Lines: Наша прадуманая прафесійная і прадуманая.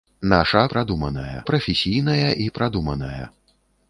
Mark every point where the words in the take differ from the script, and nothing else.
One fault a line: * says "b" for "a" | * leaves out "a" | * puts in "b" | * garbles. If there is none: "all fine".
all fine